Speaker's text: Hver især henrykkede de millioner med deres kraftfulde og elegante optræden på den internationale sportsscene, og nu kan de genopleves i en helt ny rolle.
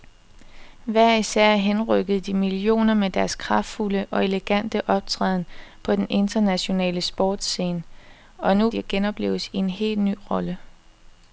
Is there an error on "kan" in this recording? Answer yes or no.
yes